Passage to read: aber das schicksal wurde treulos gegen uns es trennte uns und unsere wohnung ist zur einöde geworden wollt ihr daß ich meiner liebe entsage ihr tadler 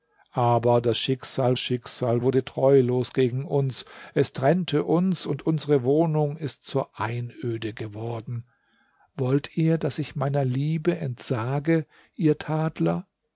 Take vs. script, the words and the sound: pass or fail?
fail